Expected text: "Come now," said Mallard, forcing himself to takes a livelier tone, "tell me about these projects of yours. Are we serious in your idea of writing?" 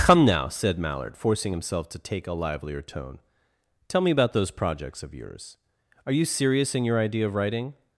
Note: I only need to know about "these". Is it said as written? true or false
false